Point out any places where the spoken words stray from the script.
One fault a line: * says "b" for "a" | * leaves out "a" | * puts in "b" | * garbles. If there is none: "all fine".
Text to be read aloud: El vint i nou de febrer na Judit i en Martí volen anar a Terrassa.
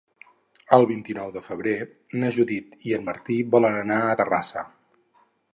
all fine